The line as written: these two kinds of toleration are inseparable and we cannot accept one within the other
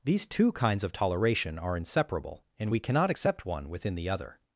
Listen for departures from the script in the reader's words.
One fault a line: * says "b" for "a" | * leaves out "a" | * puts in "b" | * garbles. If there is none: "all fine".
all fine